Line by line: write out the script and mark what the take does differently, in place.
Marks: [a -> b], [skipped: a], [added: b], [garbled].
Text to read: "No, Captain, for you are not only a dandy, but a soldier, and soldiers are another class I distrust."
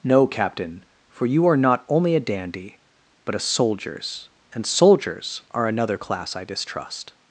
"No, Captain, for you are not only a dandy, but a [soldier, -> soldiers] and soldiers are another class I distrust."